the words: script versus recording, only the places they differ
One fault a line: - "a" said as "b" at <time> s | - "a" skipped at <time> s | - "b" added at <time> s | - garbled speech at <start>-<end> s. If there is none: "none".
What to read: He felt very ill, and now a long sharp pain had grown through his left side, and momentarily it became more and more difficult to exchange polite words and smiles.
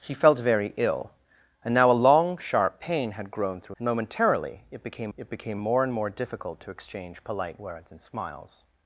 - "his left side and momentarily" said as "and momentarily it became" at 3.8 s